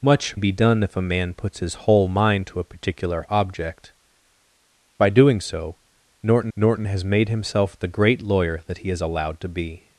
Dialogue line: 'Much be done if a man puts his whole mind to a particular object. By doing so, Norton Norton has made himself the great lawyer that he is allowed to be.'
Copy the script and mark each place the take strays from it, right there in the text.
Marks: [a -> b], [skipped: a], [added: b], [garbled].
'Much be done if a man puts his whole mind to a particular object. By doing so, Norton Norton has made himself the great lawyer that he is allowed to be.'